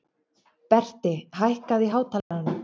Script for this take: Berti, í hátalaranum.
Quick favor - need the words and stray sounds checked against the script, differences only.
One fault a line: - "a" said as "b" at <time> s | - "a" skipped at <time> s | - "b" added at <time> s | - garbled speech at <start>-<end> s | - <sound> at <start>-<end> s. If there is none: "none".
- "hækkaðu" added at 1.4 s
- dropout at 2.2-2.3 s